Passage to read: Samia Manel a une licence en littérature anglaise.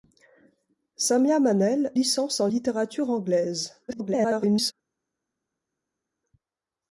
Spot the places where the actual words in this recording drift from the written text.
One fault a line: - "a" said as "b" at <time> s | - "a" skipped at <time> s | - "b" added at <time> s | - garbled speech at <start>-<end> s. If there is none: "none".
- "a une" skipped at 1.9 s
- garbled speech at 3.9-4.7 s